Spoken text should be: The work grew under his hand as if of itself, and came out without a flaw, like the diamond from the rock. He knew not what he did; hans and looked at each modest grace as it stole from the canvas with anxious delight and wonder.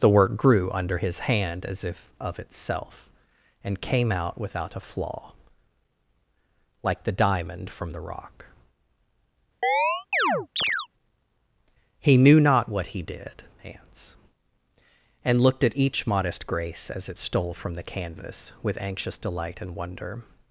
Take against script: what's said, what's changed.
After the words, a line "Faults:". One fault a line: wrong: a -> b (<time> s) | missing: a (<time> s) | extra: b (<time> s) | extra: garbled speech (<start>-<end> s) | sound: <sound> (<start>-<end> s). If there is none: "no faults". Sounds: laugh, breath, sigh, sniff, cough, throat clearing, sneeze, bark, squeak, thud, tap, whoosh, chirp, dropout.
The work grew under his hand as if of itself, and came out without a flaw, like the diamond from the rock. He knew not what he did; hans and looked at each modest grace as it stole from the canvas with anxious delight and wonder.
Faults:
sound: chirp (9.6-10.9 s)